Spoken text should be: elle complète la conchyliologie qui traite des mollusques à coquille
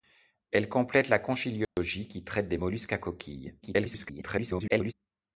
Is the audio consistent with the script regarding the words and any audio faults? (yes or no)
no